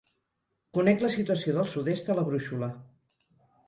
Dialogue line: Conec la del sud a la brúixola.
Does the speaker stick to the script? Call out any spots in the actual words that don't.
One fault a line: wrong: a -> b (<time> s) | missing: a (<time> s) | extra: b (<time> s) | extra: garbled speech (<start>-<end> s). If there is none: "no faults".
extra: situació (1.2 s)
extra: est (2.0 s)